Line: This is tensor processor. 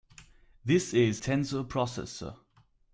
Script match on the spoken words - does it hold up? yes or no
yes